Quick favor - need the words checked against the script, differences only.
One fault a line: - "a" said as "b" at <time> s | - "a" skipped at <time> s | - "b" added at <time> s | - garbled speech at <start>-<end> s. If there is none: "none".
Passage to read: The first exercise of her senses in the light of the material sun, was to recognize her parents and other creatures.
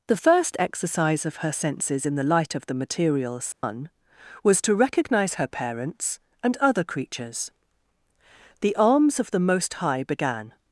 - "The arms of the Most High began" added at 8.6 s